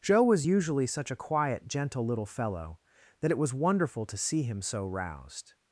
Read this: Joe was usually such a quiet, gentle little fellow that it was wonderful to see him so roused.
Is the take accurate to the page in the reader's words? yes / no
yes